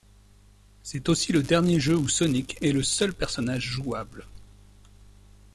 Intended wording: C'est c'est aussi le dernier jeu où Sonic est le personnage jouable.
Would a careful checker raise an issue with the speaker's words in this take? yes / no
yes